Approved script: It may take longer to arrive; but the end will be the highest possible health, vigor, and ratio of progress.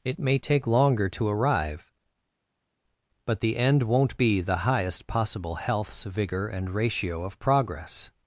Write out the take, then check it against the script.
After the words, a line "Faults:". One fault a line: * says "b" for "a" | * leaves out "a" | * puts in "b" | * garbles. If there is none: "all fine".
It may take longer to arrive; but the end won't be the highest possible healths, vigor, and ratio of progress.
Faults:
* says "won't" for "will"
* says "healths" for "health"